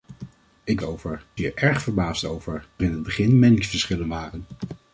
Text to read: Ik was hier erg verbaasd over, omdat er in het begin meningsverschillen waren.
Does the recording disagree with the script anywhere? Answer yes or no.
yes